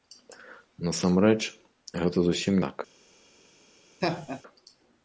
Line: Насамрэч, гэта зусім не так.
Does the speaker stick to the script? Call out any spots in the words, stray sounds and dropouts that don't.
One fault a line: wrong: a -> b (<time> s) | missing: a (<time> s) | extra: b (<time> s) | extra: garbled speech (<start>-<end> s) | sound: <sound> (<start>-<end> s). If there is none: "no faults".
missing: не (2.5 s)
sound: laugh (4.0-4.4 s)